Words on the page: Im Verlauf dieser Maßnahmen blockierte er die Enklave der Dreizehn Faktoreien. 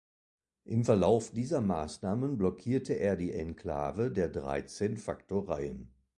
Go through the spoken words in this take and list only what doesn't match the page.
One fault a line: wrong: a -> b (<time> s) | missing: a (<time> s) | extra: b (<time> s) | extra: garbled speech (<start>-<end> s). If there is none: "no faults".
no faults